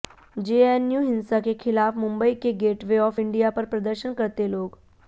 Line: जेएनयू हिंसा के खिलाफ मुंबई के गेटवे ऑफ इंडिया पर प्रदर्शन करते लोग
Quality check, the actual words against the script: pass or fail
pass